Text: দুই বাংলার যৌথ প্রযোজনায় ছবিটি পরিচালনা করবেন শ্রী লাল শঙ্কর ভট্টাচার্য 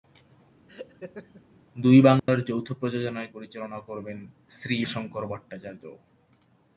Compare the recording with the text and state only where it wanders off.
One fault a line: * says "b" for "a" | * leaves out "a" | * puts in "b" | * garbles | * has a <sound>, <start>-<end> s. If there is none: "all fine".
* has a laugh, 0.7-1.4 s
* has a dropout, 2.2-2.3 s
* leaves out "ছবিটি"
* leaves out "লাল"